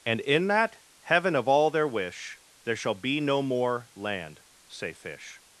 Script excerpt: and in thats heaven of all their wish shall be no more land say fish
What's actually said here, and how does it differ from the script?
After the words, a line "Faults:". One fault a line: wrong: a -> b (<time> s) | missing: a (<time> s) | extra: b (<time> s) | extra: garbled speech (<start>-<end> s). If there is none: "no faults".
and in that heaven of all their wish there shall be no more land say fish
Faults:
wrong: thats -> that (0.5 s)
extra: there (2.6 s)